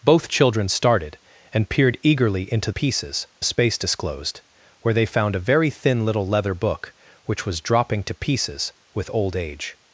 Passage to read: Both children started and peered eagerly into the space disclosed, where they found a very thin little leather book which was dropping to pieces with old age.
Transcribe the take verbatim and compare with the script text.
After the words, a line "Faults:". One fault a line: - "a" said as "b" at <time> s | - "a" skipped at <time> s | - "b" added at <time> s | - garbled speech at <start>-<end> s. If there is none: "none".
Both children started and peered eagerly into pieces space disclosed, where they found a very thin little leather book which was dropping to pieces with old age.
Faults:
- "the" said as "pieces" at 2.7 s